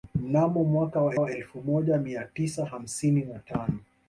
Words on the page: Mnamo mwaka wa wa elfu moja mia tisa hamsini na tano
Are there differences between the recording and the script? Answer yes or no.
no